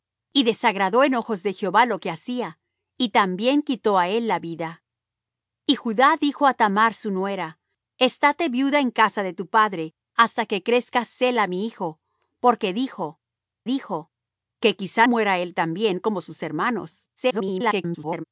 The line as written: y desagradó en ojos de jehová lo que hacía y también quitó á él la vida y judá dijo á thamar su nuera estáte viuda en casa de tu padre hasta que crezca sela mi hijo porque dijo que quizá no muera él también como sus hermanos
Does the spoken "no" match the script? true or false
false